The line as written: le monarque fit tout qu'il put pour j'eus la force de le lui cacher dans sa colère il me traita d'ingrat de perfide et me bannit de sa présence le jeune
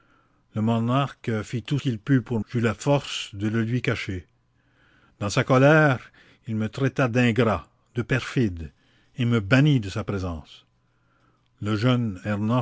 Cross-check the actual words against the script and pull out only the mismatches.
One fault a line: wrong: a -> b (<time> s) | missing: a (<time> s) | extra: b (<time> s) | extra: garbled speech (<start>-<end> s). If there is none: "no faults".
no faults